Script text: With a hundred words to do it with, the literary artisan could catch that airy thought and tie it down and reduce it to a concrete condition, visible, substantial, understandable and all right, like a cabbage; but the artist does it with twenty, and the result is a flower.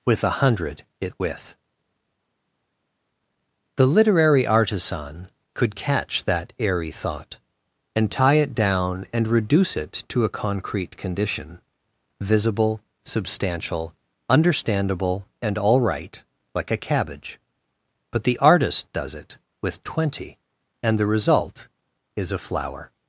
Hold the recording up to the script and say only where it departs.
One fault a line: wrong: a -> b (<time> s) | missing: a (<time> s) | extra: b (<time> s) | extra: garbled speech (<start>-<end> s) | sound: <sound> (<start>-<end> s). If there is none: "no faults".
missing: words to do (0.8 s)